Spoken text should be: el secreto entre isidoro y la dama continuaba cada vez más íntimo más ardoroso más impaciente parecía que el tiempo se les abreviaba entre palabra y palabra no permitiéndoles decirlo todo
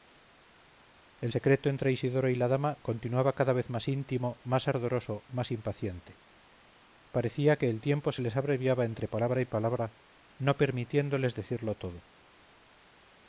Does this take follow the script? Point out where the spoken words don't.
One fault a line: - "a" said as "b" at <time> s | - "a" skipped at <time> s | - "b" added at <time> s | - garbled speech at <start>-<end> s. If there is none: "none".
none